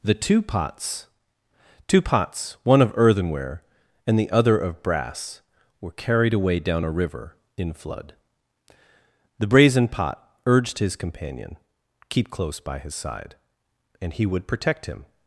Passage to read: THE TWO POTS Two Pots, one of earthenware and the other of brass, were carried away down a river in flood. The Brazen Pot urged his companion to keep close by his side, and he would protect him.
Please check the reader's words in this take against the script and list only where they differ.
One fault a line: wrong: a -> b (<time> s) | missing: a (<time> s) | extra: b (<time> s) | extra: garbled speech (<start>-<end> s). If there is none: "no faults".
missing: to (11.6 s)